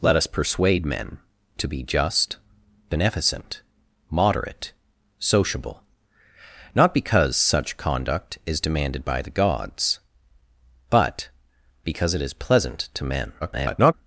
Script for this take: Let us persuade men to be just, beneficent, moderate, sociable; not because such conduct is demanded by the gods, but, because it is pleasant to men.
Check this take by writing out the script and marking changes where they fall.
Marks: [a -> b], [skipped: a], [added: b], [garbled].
Let us persuade men to be just, beneficent, moderate, sociable; not because such conduct is demanded by the gods, but, because it is pleasant to men. [garbled]